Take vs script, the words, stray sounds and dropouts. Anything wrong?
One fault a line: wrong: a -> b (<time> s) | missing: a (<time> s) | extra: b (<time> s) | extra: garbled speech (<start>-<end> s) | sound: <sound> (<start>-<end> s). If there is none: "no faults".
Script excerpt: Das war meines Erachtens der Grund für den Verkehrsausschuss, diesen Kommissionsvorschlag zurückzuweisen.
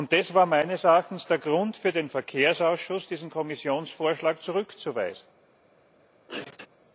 sound: sneeze (6.3-6.7 s)